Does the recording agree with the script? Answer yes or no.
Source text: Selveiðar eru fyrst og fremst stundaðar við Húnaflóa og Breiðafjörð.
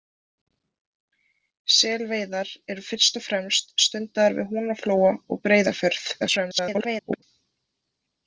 no